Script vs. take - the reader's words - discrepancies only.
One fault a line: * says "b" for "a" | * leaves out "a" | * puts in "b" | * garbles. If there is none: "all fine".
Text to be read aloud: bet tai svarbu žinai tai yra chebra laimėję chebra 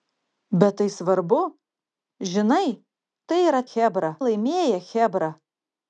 all fine